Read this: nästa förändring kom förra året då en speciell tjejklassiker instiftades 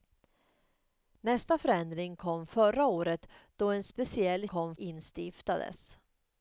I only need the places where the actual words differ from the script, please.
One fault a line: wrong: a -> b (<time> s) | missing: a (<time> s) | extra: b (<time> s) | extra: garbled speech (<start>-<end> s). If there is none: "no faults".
wrong: tjejklassiker -> kom (4.4 s)